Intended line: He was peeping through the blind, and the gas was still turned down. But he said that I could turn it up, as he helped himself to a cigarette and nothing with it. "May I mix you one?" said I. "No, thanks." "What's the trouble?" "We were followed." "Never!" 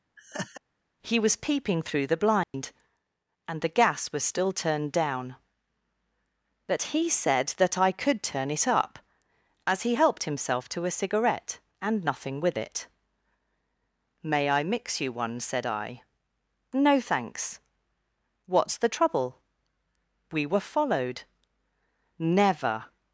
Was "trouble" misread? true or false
false